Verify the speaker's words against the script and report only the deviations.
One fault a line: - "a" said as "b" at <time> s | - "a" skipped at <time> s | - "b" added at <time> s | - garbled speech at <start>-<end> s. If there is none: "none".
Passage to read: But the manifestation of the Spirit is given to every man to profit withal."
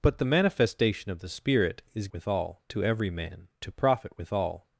- "given" said as "withal" at 2.1 s